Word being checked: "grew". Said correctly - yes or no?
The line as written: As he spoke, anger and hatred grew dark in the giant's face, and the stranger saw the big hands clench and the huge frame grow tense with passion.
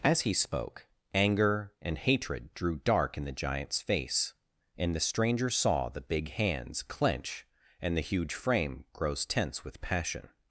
no